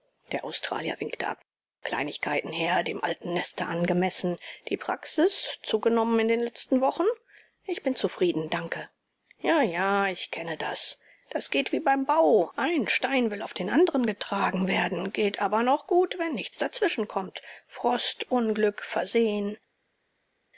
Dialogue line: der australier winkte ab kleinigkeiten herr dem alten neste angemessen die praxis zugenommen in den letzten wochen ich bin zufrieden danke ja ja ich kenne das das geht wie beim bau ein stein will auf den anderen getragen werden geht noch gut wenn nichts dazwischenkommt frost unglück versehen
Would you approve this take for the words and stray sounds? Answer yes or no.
no